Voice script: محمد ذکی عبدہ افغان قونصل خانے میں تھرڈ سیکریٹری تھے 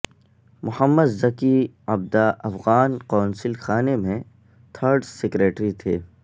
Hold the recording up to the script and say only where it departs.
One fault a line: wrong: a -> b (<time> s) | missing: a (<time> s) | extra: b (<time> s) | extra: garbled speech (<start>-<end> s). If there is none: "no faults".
no faults